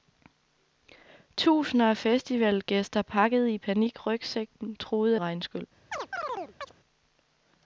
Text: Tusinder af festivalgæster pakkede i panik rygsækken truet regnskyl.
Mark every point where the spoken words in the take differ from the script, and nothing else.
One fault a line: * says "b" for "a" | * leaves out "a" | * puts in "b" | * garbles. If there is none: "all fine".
all fine